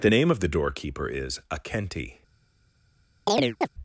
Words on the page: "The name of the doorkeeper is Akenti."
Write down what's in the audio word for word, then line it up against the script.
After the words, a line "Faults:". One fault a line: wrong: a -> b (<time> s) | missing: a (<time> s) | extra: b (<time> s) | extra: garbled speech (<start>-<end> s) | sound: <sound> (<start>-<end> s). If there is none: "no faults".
"The name of the doorkeeper is Akenti."
Faults:
sound: chirp (3.3-3.7 s)